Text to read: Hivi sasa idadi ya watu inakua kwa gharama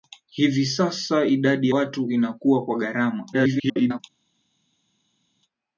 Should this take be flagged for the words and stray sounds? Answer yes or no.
yes